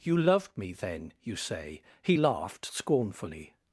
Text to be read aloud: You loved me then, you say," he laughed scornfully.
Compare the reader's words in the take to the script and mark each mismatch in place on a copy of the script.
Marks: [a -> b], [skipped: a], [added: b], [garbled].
You loved me then, you say," he laughed scornfully.